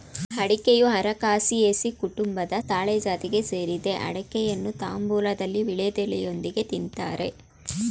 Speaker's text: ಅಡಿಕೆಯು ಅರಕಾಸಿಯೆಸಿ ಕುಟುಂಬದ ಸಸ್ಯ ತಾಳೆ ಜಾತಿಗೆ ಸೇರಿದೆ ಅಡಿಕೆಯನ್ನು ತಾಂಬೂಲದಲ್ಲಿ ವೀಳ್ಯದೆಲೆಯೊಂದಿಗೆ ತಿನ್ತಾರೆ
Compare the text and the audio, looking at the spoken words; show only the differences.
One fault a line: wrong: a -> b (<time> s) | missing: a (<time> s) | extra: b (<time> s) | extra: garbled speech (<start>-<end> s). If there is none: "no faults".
missing: ಸಸ್ಯ (2.5 s)